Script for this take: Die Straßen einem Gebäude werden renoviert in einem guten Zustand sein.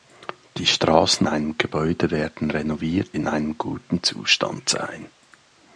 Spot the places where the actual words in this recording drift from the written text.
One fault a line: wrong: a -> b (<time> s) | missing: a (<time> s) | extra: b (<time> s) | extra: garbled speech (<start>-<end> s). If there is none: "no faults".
no faults